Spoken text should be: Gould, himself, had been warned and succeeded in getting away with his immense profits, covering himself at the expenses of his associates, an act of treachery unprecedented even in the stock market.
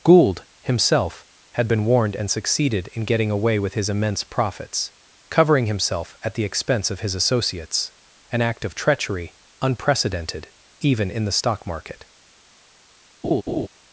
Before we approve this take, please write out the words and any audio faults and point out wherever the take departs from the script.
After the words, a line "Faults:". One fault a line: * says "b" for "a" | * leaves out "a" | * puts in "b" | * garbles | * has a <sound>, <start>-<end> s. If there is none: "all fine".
Gould, himself, had been warned and succeeded in getting away with his immense profits, covering himself at the expense of his associates, an act of treachery unprecedented even in the stock market.
Faults:
* says "expense" for "expenses"
* has a laugh, 13.2-13.7 s